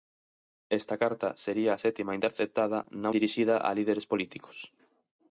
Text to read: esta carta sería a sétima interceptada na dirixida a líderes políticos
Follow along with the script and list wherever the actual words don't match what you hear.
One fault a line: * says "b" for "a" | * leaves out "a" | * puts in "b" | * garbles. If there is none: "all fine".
all fine